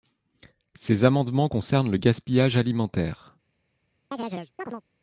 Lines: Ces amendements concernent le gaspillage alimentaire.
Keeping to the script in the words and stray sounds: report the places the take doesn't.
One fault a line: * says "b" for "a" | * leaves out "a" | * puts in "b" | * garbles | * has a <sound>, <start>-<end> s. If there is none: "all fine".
* has a chirp, 4.1-4.8 s